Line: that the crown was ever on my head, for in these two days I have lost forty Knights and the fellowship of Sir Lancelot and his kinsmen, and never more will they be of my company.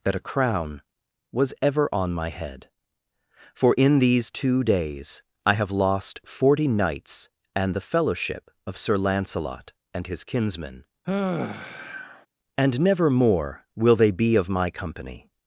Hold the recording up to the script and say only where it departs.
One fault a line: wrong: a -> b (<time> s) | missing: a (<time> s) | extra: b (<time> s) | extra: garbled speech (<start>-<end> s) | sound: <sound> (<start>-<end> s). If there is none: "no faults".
wrong: the -> a (0.1 s)
sound: sigh (11.0-12.3 s)